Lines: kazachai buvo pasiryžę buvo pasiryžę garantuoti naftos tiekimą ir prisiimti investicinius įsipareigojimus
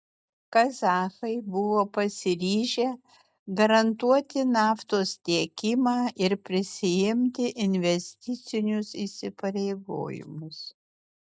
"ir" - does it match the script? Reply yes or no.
yes